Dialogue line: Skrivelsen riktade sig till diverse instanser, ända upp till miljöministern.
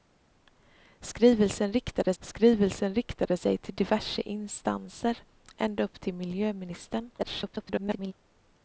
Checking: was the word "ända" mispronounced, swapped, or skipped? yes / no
no